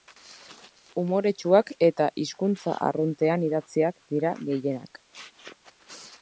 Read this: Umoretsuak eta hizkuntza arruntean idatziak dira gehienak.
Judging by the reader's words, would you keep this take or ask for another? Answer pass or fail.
pass